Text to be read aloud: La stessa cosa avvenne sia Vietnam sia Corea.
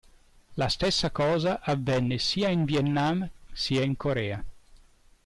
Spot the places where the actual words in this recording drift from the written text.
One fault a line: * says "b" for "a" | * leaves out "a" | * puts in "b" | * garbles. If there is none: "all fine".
* puts in "in"
* puts in "in"